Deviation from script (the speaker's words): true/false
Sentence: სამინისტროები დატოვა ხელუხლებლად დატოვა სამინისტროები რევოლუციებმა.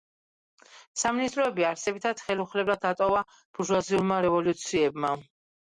true